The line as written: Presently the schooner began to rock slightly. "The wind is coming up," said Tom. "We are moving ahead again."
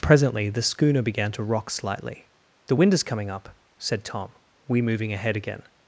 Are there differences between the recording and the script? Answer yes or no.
yes